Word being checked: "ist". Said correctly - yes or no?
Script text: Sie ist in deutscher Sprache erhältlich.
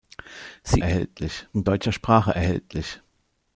no